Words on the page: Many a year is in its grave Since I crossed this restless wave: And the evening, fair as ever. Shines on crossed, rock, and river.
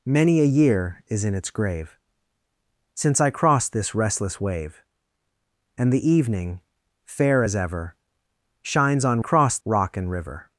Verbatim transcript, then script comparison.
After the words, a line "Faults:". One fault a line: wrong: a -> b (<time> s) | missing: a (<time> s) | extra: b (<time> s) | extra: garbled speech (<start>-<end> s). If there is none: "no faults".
Many a year is in its grave Since I crossed this restless wave: And the evening, fair as ever. Shines on crossed, rock, and river.
Faults:
no faults